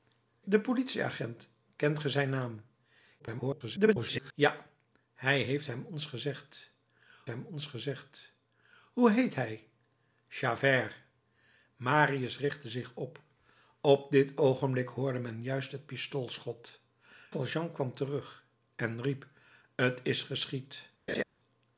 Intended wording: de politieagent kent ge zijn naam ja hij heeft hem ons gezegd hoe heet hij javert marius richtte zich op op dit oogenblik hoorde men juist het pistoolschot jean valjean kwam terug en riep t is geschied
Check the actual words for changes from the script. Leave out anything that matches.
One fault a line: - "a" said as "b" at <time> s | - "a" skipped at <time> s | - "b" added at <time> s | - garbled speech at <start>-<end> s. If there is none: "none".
- garbled speech at 3.2-4.3 s
- "hem ons gezegd" added at 7.3 s
- "jean" skipped at 16.8 s